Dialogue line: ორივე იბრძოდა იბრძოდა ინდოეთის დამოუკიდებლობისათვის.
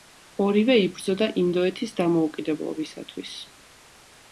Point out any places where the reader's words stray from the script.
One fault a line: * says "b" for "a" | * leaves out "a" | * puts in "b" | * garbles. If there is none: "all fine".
* leaves out "იბრძოდა"